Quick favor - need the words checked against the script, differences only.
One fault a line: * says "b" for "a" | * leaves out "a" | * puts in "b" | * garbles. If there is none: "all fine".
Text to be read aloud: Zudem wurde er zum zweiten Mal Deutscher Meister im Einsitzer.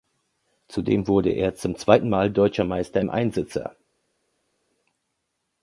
all fine